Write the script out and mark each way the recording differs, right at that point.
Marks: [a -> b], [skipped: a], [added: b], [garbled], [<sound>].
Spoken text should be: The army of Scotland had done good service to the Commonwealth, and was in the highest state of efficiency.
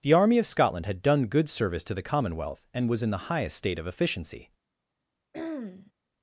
The army of Scotland had done good service to the Commonwealth, and was in the highest state of efficiency. [throat clearing]